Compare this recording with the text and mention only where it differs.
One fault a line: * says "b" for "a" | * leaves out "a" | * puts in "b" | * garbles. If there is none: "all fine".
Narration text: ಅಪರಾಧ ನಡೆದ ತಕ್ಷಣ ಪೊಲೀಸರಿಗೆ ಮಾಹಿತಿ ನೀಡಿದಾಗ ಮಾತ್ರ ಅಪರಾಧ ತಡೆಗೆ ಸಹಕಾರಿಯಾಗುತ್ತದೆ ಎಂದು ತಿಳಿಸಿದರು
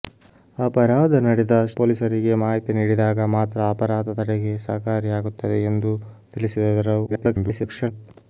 * leaves out "ತಕ್ಷಣ"
* garbles